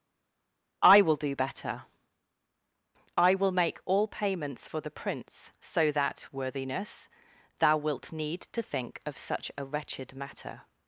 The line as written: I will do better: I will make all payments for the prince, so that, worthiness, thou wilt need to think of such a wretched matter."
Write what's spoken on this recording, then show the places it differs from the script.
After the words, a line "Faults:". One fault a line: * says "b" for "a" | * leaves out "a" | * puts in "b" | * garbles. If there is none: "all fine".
I will do better: I will make all payments for the prince, so that, worthiness, thou wilt need to think of such a wretched matter."
Faults:
all fine